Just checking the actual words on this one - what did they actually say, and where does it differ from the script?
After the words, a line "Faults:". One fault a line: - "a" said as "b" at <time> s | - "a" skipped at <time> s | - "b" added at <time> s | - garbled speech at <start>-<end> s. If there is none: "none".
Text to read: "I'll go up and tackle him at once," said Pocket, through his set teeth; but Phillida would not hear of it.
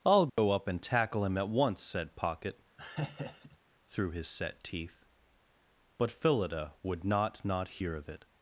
"I'll go up and tackle him at once," said Pocket, through his set teeth; but Phillida would not not hear of it.
Faults:
- "not" added at 7.4 s